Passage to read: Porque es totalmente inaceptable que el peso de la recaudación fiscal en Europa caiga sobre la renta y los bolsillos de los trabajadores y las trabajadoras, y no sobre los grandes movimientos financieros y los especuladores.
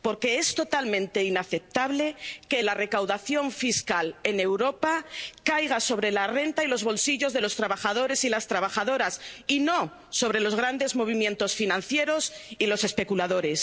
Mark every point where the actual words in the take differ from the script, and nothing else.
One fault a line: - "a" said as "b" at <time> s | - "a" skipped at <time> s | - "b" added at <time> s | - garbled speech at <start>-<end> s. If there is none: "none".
- "el peso de" skipped at 2.6 s